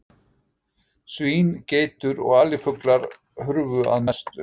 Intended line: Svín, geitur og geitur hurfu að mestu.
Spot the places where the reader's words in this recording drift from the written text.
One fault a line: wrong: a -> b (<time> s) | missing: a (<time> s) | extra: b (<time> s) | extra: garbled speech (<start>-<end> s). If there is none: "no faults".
wrong: geitur -> alifuglar (2.4 s)